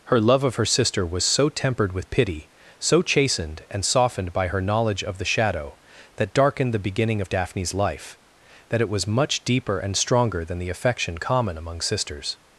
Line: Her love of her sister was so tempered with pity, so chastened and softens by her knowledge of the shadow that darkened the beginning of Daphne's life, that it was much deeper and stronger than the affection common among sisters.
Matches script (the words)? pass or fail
fail